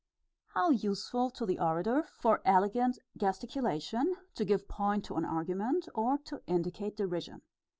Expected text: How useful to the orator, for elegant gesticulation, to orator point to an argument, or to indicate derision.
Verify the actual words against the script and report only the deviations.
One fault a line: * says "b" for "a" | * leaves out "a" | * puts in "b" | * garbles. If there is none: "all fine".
* says "give" for "orator"